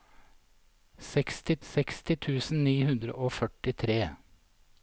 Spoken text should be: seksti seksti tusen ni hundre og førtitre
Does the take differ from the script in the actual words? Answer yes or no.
no